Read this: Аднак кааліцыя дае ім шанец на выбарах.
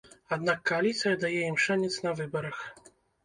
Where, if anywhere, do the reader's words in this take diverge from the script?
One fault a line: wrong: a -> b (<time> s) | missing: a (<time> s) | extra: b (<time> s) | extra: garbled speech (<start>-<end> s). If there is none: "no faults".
no faults